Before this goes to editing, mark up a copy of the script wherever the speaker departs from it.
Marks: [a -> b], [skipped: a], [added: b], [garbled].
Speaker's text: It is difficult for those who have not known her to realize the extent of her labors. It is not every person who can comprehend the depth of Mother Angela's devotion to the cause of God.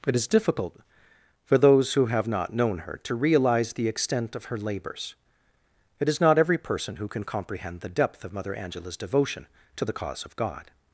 It is difficult for those who have not known her to realize the extent of her labors. It is not every person who can comprehend the depth of Mother Angela's devotion to the cause of God.